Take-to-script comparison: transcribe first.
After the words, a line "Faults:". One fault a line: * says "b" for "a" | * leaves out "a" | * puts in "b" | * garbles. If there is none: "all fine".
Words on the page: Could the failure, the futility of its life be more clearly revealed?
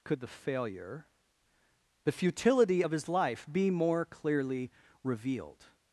Could the failure, the futility of his life be more clearly revealed?
Faults:
* says "his" for "its"